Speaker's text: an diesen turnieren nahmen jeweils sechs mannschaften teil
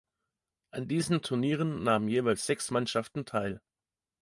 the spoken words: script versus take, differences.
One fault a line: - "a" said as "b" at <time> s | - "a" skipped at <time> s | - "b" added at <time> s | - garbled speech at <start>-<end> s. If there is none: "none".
none